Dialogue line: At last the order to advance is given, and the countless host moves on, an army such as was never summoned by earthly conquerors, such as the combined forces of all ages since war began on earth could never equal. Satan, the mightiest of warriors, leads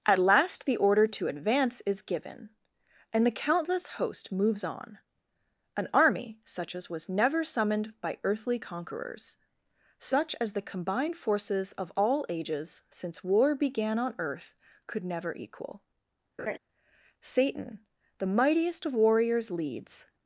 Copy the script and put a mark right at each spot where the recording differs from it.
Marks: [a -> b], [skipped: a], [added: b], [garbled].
At last the order to advance is given, and the countless host moves on, an army such as was never summoned by earthly conquerors, such as the combined forces of all ages since war began on earth could never equal. Satan, the mightiest of warriors, leads